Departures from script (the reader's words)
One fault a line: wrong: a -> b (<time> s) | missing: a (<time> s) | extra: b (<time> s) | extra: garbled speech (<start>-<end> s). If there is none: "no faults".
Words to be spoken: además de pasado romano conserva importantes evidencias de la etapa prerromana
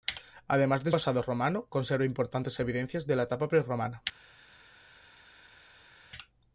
no faults